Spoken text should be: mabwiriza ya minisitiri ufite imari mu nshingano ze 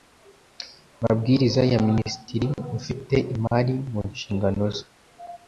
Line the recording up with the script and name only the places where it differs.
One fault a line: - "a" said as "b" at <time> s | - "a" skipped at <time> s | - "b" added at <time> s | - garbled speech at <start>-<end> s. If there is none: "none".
none